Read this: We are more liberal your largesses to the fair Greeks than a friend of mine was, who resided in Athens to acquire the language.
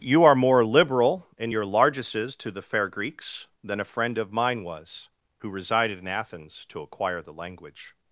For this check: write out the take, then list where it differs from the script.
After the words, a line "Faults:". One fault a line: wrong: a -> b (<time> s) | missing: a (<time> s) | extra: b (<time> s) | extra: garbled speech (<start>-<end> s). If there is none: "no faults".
You are more liberal in your largesses to the fair Greeks than a friend of mine was, who resided in Athens to acquire the language.
Faults:
wrong: We -> You (0.0 s)
extra: in (1.4 s)